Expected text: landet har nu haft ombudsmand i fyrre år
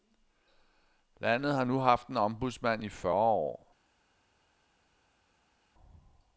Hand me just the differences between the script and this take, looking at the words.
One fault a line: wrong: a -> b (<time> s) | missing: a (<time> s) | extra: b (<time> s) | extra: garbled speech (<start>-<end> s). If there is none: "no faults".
extra: en (2.1 s)